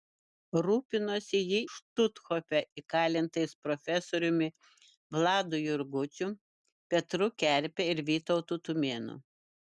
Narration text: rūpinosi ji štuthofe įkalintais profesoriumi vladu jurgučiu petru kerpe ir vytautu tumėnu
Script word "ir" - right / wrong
right